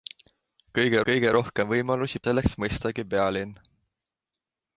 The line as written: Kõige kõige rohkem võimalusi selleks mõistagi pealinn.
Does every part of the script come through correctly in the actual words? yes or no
yes